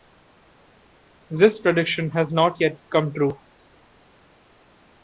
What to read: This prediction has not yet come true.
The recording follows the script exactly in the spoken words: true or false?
true